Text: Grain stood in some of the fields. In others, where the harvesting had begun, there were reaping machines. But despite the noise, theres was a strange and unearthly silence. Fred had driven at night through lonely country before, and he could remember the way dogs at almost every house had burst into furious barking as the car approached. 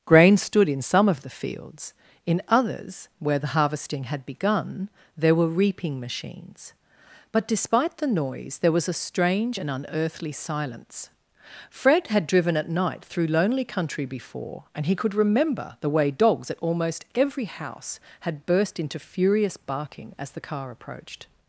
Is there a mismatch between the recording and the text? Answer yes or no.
yes